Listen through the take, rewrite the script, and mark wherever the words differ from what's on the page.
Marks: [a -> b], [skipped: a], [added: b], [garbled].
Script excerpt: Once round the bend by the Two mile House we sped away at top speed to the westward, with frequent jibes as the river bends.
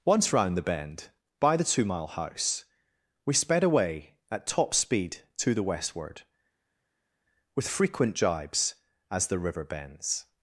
Once round the bend by the Two mile House we sped away at top speed to the westward, with frequent jibes as the river bends.